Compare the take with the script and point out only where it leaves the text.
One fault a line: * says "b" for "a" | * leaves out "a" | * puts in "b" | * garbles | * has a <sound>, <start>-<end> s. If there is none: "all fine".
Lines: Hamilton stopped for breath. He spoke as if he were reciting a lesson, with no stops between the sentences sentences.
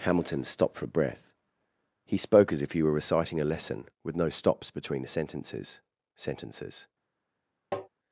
* has a tap, 7.7-7.9 s